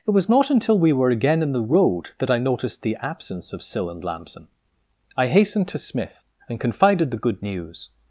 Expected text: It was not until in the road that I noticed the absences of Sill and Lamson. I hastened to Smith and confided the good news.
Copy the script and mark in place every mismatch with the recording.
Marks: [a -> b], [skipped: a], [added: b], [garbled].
It was not until [added: we were again] in the road that I noticed the [absences -> absence] of Sill and Lamson. I hastened to Smith and confided the good news.